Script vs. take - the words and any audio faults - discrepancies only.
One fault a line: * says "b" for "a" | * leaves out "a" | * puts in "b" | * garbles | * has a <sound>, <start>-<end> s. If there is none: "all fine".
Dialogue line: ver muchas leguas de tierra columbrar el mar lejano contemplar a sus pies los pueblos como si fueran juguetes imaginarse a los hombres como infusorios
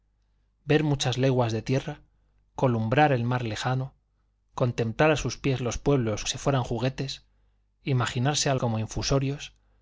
* leaves out "como"
* leaves out "los hombres"